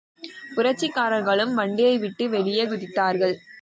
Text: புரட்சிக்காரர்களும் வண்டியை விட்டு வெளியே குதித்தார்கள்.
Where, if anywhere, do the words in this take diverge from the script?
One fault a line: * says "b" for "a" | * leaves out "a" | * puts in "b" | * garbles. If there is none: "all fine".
all fine